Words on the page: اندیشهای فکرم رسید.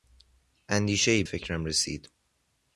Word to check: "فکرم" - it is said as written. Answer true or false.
true